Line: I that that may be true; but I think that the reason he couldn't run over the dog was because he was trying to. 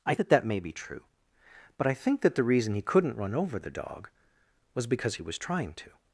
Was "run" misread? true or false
false